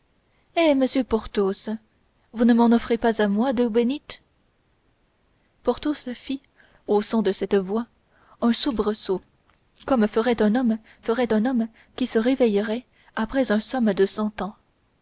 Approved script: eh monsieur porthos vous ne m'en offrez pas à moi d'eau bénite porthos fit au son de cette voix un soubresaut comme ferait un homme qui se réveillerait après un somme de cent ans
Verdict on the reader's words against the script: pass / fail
fail